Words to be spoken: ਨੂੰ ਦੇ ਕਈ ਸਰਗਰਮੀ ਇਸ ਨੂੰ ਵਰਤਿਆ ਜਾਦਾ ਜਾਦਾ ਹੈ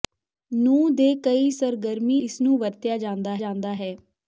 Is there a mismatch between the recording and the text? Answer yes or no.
no